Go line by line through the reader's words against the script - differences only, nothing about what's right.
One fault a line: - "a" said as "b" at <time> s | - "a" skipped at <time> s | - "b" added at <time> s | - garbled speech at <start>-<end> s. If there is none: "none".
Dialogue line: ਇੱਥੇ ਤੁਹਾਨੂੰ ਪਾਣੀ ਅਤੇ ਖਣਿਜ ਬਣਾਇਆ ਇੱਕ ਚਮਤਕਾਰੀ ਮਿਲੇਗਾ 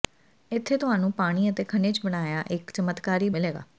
none